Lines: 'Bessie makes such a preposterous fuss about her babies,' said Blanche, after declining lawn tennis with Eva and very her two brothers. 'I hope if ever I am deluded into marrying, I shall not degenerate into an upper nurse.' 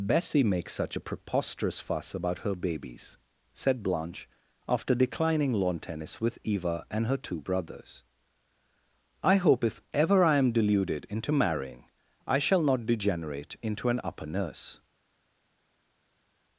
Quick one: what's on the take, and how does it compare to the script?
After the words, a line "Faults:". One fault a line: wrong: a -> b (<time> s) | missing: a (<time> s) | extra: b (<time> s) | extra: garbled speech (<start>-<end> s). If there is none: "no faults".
'Bessie makes such a preposterous fuss about her babies,' said Blanche, after declining lawn tennis with Eva and her two brothers. 'I hope if ever I am deluded into marrying, I shall not degenerate into an upper nurse.'
Faults:
missing: very (7.1 s)